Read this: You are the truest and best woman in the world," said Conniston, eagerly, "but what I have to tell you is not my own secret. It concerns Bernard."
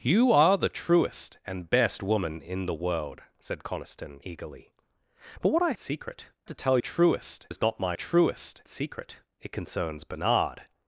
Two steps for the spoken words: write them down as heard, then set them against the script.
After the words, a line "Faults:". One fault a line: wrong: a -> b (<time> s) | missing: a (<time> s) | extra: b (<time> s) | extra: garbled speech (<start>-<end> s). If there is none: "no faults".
You are the truest and best woman in the world," said Conniston, eagerly, "but what I secret to tell truest is not my truest secret. It concerns Bernard."
Faults:
wrong: have -> secret (5.8 s)
wrong: you -> truest (6.8 s)
wrong: own -> truest (7.9 s)